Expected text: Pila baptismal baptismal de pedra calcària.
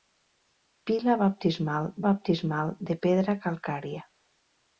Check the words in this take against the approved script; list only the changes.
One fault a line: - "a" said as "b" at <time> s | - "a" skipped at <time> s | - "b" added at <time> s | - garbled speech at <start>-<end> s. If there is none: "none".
none